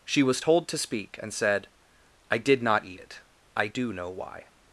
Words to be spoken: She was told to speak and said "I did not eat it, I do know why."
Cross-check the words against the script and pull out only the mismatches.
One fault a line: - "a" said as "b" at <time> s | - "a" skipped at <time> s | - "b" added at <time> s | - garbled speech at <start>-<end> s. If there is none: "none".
none